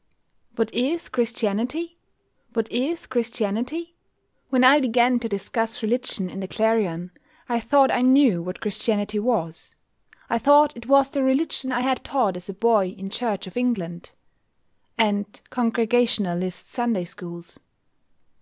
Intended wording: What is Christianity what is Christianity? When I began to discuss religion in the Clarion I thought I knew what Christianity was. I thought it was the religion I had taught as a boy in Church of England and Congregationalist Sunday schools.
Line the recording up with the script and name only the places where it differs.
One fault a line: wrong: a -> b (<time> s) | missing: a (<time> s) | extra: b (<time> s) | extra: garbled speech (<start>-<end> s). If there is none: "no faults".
no faults